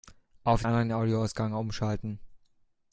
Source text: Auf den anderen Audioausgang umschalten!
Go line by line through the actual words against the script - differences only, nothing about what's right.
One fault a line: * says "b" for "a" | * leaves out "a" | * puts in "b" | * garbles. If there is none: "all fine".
* leaves out "den"